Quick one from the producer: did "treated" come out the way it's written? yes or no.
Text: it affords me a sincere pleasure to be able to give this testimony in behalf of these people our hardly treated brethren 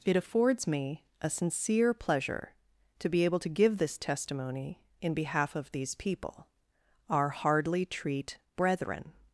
no